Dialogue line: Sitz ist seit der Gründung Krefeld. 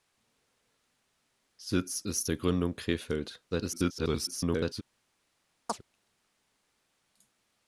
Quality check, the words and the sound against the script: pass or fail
fail